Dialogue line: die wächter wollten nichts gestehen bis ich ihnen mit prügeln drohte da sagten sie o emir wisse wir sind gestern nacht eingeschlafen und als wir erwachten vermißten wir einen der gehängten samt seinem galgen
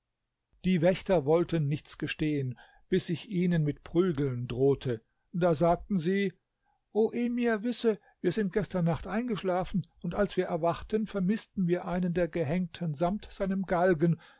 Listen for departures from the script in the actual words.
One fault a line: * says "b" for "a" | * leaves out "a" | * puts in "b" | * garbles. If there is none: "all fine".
all fine